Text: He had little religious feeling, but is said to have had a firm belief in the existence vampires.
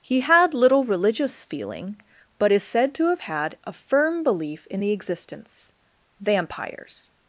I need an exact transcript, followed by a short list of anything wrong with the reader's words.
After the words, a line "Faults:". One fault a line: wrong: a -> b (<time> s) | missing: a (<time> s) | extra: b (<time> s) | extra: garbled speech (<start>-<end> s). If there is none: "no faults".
He had little religious feeling, but is said to have had a firm belief in the existence vampires.
Faults:
no faults